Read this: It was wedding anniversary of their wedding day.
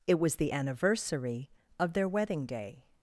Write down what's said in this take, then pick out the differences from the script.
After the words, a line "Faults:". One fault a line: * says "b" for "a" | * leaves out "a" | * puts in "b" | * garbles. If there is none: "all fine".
It was the anniversary of their wedding day.
Faults:
* says "the" for "wedding"